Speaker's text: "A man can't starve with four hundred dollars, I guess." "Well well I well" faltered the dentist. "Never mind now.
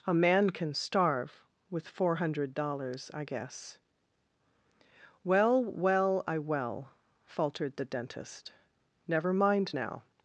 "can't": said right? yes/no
no